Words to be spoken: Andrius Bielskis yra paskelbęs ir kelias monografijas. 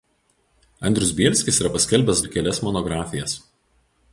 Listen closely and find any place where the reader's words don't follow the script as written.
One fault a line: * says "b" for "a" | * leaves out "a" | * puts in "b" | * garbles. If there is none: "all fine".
all fine